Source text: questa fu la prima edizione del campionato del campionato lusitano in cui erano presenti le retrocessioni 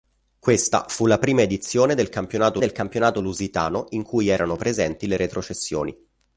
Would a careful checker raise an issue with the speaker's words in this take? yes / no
no